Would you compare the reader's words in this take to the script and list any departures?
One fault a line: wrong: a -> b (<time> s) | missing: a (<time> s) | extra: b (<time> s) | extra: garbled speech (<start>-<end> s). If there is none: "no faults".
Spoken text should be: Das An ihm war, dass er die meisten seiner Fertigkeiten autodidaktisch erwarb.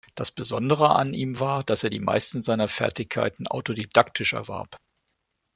extra: Besondere (0.3 s)